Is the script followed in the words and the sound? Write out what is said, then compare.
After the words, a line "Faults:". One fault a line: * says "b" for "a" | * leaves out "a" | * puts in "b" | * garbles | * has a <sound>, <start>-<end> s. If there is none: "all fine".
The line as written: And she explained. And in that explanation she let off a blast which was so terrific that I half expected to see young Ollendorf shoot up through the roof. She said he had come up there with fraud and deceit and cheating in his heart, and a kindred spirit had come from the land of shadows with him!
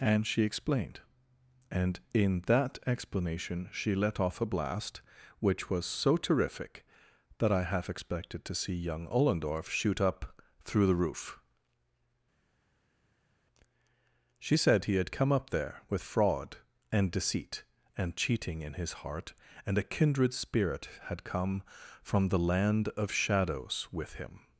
And she explained. And in that explanation she let off a blast which was so terrific that I half expected to see young Ollendorf shoot up through the roof. She said he had come up there with fraud and deceit and cheating in his heart, and a kindred spirit had come from the land of shadows with him!
Faults:
all fine